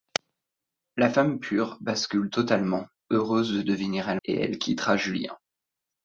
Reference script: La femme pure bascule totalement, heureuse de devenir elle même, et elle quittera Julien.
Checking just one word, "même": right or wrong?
wrong